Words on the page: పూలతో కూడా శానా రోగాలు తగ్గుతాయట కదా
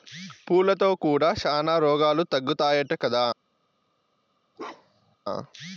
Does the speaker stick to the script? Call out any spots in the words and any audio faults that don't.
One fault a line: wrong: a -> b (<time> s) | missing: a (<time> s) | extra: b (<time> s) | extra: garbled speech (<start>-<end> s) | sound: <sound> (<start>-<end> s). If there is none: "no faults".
sound: bark (4.6-5.2 s)